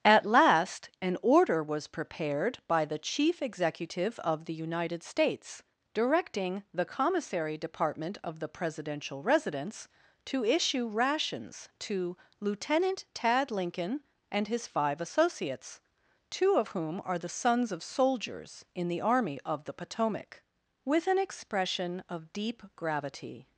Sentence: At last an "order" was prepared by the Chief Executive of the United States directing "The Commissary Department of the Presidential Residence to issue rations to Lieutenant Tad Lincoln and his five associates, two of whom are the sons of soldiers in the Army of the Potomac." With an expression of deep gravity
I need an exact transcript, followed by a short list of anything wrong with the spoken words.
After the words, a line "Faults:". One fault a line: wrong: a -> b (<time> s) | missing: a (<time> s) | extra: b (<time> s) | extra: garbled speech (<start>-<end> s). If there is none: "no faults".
At last an "order" was prepared by the Chief Executive of the United States directing "The Commissary Department of the Presidential Residence to issue rations to Lieutenant Tad Lincoln and his five associates, two of whom are the sons of soldiers in the Army of the Potomac." With an expression of deep gravity
Faults:
no faults